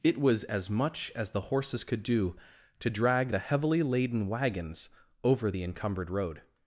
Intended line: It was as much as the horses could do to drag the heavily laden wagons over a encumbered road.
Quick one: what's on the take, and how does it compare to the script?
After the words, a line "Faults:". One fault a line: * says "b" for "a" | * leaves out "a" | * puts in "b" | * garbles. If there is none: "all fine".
It was as much as the horses could do to drag the heavily laden wagons over the encumbered road.
Faults:
* says "the" for "a"